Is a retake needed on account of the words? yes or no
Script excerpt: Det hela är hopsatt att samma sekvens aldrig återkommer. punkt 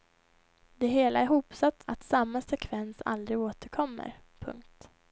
no